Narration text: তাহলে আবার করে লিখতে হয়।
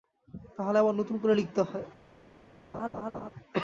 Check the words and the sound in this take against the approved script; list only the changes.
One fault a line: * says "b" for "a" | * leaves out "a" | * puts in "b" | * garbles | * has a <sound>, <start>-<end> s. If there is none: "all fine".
* puts in "নতুন"
* has a laugh, 2.7-3.3 s